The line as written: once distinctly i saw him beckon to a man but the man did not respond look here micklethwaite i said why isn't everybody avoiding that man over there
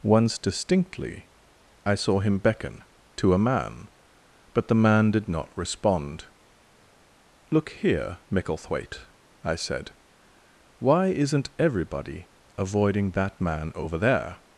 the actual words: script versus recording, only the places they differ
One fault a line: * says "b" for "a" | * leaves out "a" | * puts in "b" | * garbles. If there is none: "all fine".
all fine